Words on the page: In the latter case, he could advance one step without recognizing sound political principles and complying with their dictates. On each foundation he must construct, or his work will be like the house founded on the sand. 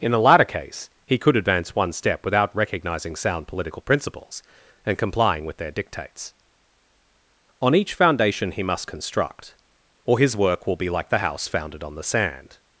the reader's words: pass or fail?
pass